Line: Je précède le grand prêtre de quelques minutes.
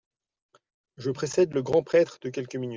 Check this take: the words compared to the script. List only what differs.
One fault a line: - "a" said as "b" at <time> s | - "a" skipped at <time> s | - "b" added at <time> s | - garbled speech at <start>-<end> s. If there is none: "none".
none